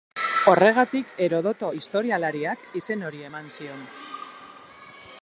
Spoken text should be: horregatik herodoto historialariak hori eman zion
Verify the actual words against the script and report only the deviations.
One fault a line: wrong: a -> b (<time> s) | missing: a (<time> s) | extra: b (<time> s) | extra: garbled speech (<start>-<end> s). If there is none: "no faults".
extra: izen (2.8 s)